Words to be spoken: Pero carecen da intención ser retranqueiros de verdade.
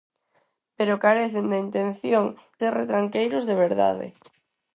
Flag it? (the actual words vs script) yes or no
no